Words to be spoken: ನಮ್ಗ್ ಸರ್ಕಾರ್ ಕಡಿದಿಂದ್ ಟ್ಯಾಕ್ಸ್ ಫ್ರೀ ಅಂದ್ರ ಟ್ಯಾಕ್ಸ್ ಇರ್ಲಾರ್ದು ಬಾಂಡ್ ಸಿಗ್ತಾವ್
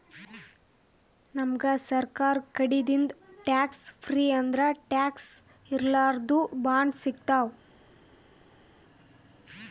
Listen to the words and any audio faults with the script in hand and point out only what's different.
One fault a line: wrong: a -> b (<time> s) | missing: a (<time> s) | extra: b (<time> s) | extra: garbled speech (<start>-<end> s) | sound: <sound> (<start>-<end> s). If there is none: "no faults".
no faults